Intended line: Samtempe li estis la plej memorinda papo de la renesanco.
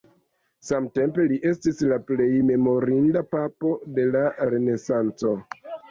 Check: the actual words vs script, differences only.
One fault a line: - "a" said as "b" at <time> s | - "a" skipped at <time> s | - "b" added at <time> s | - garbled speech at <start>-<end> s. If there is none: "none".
none